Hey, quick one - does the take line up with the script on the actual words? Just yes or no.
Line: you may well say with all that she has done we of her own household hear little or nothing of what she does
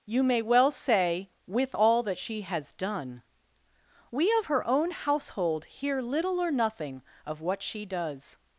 yes